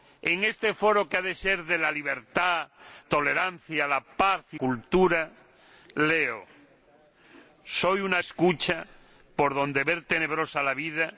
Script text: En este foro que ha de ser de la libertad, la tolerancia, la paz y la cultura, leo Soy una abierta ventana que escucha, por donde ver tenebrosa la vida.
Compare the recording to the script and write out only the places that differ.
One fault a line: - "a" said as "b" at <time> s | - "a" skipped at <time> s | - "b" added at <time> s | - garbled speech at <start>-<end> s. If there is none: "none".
- "la" skipped at 2.7 s
- "la" skipped at 4.6 s
- "abierta ventana que" skipped at 8.2 s